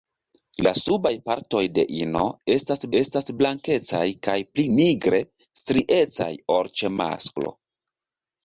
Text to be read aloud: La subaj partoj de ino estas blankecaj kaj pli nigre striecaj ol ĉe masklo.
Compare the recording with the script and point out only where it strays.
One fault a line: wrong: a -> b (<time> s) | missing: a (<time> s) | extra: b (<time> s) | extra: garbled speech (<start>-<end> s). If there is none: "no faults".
extra: estas (3.0 s)